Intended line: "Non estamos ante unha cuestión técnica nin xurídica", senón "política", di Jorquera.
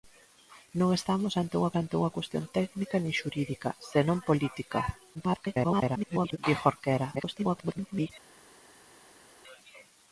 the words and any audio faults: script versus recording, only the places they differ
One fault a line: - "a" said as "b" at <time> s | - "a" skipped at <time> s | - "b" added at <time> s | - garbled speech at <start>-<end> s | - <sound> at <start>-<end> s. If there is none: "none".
- "ante unha" added at 1.8 s
- garbled speech at 5.1-6.4 s
- garbled speech at 7.2-8.1 s